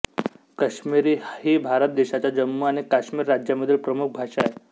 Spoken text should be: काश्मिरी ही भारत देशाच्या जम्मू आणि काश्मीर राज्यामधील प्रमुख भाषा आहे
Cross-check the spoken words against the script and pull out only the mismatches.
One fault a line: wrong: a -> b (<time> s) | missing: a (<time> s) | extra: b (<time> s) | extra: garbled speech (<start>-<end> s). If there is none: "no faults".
no faults